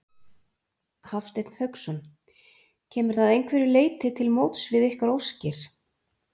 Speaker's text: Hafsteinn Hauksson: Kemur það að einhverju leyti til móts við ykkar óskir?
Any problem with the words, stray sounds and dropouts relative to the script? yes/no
no